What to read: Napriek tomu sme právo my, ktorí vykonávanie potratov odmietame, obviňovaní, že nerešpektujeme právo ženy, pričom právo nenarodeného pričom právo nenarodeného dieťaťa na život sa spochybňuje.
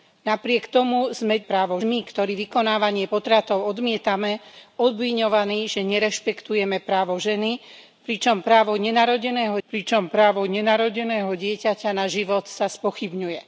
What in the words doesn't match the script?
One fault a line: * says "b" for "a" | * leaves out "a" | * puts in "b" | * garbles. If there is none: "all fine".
all fine